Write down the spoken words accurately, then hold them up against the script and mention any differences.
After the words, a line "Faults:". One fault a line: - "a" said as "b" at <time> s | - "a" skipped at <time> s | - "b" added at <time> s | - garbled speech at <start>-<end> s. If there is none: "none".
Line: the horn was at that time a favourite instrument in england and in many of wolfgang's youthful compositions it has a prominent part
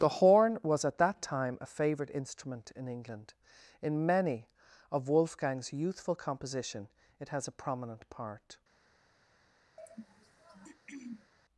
the horn was at that time a favourite instrument in england in many of wolfgang's youthful composition it has a prominent part
Faults:
- "and" skipped at 3.4 s
- "compositions" said as "composition" at 6.2 s